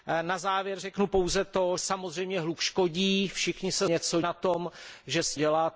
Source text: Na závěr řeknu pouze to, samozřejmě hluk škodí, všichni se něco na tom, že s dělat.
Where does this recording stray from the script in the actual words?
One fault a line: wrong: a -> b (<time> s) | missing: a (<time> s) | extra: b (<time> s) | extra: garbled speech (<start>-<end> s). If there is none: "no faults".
no faults